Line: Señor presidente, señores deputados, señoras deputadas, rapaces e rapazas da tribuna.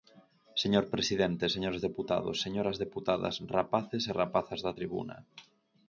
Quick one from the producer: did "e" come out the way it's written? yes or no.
yes